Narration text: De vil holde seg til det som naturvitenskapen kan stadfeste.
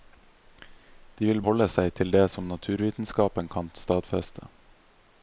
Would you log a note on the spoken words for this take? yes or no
no